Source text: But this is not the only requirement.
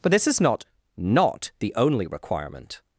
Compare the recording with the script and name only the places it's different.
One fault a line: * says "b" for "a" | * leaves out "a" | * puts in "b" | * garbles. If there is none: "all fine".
* puts in "not"